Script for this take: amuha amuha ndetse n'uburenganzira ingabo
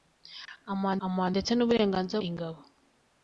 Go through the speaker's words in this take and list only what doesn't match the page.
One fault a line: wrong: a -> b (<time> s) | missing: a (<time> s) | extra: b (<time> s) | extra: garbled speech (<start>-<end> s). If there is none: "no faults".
no faults